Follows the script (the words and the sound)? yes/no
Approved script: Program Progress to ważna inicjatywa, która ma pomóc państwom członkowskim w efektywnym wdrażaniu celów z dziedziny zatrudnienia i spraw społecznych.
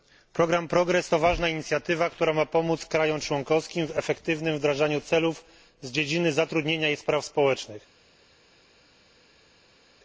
yes